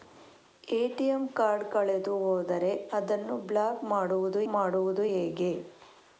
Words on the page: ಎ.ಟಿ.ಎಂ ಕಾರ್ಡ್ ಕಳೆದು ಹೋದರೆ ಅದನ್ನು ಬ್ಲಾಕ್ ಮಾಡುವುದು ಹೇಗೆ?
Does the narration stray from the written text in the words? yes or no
yes